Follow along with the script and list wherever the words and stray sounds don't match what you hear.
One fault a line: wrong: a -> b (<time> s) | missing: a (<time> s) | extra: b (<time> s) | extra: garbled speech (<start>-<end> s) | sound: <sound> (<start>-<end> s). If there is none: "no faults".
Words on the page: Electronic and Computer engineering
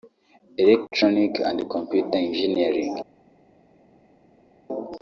no faults